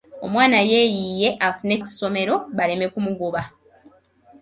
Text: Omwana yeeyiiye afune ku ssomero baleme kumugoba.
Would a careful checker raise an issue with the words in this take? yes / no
no